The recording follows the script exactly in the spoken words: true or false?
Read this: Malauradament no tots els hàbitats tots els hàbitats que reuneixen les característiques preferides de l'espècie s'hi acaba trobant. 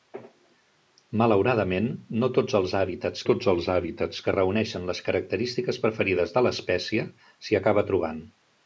true